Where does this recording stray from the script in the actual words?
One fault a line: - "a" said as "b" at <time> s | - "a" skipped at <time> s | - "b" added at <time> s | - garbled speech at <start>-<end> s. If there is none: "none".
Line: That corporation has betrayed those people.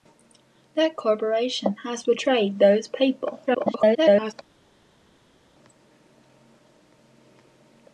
- garbled speech at 3.5-4.3 s